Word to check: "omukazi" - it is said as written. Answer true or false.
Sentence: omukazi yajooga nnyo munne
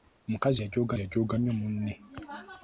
true